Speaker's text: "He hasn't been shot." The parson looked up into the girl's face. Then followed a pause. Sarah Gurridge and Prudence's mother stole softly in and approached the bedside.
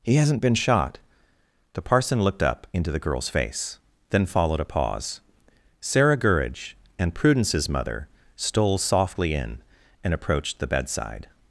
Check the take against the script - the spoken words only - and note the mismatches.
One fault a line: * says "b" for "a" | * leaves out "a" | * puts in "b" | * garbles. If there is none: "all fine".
all fine